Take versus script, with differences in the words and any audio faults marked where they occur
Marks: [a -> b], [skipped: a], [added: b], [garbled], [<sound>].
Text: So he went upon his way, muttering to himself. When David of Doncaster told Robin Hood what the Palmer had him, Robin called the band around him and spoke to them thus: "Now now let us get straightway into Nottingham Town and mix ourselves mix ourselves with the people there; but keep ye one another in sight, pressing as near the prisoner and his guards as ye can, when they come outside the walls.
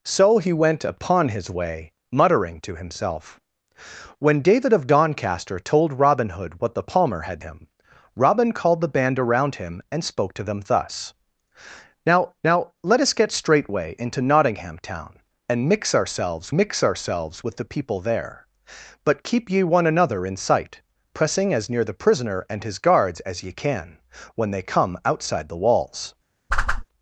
So he went upon his way, muttering to himself. When David of Doncaster told Robin Hood what the Palmer had him, Robin called the band around him and spoke to them thus: "Now now let us get straightway into Nottingham Town and mix ourselves mix ourselves with the people there; but keep ye one another in sight, pressing as near the prisoner and his guards as ye can, when they come outside the walls. [whoosh]